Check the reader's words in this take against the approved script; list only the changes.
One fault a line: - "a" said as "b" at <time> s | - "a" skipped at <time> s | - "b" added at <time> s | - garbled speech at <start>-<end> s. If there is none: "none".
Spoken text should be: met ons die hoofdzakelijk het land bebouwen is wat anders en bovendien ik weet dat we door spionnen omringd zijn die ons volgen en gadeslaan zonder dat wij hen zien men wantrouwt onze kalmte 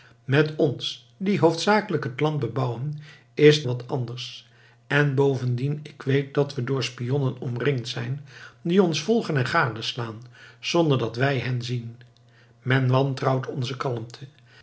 none